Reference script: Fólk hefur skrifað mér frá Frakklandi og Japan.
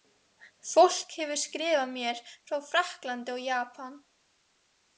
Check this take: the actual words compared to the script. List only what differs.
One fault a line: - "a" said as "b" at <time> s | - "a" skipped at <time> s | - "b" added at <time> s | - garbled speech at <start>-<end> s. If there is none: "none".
none